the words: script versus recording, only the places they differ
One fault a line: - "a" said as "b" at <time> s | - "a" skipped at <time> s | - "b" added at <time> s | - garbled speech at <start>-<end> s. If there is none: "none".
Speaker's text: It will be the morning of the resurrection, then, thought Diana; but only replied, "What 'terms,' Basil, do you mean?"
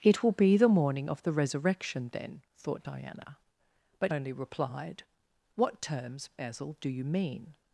none